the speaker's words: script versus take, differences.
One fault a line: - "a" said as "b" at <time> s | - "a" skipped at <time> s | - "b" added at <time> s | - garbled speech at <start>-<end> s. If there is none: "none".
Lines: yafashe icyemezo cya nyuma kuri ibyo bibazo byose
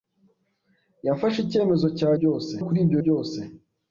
- "nyuma" said as "byose" at 2.2 s
- "bibazo" skipped at 3.0 s